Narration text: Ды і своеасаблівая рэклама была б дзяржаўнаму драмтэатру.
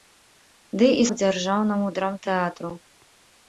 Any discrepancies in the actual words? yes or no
yes